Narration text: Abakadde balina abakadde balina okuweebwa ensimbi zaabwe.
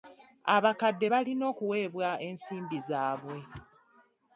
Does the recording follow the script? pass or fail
fail